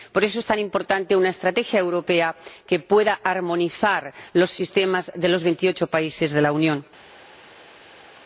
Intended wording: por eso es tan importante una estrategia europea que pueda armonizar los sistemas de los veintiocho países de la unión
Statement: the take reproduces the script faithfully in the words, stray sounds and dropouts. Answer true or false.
true